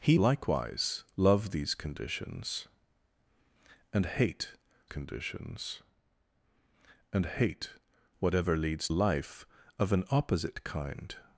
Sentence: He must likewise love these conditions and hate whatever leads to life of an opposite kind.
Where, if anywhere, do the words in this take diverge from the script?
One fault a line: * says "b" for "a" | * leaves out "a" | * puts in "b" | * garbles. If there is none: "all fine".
* leaves out "must"
* puts in "conditions and hate"
* leaves out "to"